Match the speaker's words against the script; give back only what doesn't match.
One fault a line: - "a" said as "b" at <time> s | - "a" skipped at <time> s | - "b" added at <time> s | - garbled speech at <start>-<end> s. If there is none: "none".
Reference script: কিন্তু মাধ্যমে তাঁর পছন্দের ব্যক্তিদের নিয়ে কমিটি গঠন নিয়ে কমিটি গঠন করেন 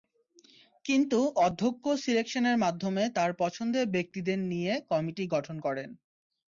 - "অধ্যক্ষ সিলেকশনের" added at 1.4 s
- "নিয়ে কমিটি গঠন" skipped at 5.6 s